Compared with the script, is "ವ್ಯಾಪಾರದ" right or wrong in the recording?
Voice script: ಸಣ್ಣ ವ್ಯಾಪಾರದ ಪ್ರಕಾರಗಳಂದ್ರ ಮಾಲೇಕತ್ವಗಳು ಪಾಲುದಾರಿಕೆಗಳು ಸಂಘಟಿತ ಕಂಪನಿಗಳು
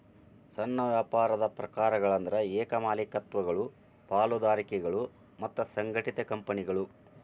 right